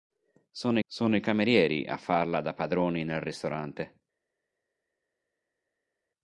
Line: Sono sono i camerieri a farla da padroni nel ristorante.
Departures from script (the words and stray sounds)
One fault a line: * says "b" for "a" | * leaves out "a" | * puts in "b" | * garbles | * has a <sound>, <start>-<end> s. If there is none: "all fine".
all fine